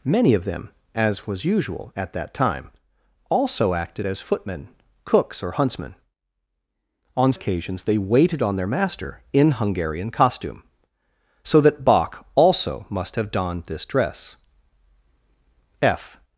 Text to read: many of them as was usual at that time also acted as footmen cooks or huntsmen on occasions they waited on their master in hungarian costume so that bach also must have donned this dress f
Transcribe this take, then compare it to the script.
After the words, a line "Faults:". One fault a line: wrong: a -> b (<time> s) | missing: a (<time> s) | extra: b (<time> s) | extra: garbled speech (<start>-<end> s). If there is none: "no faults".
many of them as was usual at that time also acted as footmen cooks or huntsmen on occasions they waited on their master in hungarian costume so that bach also must have donned this dress f
Faults:
no faults